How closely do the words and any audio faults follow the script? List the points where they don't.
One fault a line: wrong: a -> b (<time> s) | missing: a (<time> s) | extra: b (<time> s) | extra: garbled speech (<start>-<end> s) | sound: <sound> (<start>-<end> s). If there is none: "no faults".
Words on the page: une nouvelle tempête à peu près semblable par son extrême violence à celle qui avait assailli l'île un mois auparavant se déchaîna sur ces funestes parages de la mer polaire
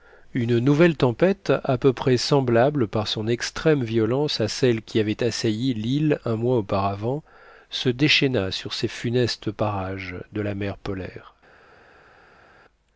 no faults